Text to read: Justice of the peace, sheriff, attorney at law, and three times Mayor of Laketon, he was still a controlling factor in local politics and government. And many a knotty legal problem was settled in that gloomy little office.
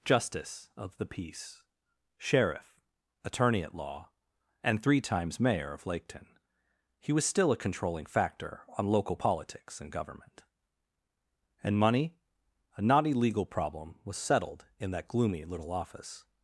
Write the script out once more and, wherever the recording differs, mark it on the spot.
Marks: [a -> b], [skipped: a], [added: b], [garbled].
Justice of the peace, sheriff, attorney at law, and three times Mayor of Laketon, he was still a controlling factor [in -> on] local politics and government. And [many -> money] a knotty legal problem was settled in that gloomy little office.